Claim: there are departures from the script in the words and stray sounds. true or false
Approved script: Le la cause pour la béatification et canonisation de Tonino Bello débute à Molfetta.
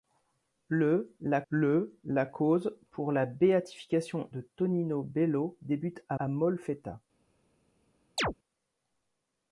true